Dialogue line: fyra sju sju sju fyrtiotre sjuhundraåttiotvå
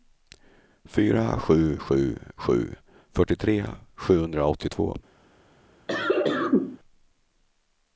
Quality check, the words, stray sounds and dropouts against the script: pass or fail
fail